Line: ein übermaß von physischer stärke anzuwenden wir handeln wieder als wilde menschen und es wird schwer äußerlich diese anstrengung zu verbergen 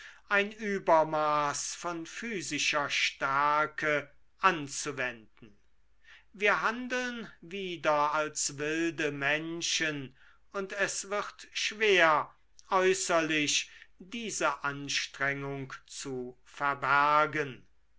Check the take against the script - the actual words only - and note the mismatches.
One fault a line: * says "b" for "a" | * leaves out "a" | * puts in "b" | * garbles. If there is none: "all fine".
all fine